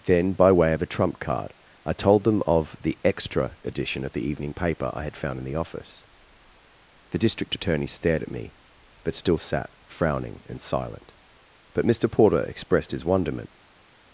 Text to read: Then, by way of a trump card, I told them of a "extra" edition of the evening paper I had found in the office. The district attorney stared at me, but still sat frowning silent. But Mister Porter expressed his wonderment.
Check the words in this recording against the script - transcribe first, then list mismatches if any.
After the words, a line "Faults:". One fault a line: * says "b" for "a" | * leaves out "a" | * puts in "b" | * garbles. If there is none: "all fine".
Then, by way of a trump card, I told them of the "extra" edition of the evening paper I had found in the office. The district attorney stared at me, but still sat frowning and silent. But Mister Porter expressed his wonderment.
Faults:
* says "the" for "a"
* puts in "and"